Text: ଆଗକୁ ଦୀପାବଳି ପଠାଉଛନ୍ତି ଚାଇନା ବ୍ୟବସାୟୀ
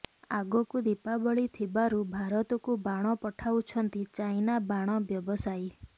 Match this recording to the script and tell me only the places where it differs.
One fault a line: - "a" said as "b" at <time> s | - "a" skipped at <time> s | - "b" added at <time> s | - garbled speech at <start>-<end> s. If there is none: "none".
- "ଥିବାରୁ ଭାରତକୁ ବାଣ" added at 1.6 s
- "ବାଣ" added at 4.7 s